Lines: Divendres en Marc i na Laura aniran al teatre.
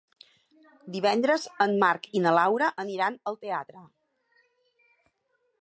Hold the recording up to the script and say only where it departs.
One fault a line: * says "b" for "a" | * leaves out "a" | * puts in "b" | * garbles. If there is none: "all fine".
all fine